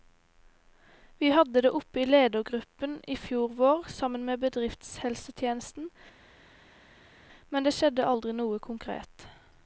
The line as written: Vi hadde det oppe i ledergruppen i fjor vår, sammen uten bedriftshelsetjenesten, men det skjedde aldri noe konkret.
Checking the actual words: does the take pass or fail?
fail